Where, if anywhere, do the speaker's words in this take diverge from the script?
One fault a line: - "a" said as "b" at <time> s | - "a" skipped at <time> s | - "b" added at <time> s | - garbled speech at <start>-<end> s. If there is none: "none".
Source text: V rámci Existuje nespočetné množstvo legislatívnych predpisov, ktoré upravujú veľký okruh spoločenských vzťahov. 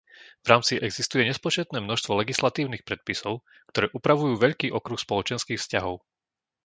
none